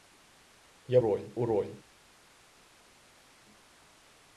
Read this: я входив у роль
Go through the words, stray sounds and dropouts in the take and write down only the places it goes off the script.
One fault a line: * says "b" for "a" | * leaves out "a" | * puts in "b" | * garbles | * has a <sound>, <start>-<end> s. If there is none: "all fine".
* says "роль" for "входив"